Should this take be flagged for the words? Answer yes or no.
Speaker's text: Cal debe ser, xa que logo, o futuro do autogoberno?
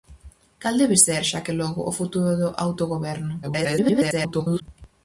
yes